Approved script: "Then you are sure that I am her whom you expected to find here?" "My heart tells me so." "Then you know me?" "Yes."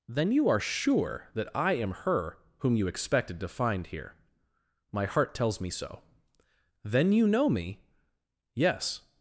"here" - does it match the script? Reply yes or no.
yes